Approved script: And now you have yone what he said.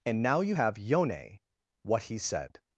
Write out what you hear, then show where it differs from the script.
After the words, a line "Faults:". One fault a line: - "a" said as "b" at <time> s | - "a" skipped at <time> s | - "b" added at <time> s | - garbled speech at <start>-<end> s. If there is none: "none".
And now you have yone what he said.
Faults:
none